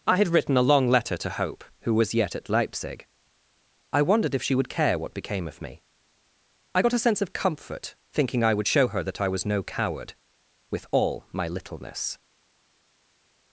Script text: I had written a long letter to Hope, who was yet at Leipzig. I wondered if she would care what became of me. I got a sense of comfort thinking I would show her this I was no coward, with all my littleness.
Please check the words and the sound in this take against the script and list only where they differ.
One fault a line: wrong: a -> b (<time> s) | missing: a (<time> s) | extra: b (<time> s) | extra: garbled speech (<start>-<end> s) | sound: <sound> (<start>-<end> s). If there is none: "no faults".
wrong: this -> that (9.0 s)